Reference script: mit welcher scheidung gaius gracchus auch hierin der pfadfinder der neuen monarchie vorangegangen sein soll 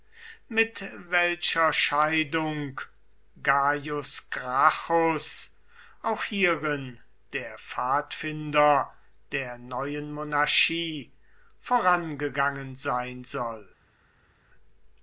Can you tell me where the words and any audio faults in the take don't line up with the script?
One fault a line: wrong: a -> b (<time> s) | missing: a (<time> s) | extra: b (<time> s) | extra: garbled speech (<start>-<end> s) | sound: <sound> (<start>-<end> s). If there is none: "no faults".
no faults